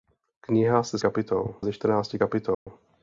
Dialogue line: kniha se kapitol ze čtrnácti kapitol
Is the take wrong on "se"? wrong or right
right